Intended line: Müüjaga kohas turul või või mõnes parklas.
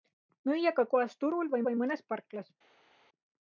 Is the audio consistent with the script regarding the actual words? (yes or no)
yes